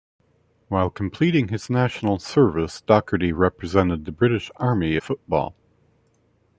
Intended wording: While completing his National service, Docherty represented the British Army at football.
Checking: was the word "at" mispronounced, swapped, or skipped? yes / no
yes